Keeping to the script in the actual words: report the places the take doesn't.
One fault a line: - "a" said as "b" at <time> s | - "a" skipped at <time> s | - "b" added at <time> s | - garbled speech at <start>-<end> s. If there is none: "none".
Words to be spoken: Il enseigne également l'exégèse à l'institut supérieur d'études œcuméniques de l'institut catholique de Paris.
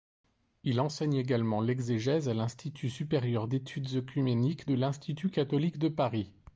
none